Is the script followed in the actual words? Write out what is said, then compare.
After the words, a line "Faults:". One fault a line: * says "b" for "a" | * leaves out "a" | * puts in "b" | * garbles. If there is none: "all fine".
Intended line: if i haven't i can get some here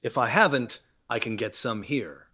if i haven't i can get some here
Faults:
all fine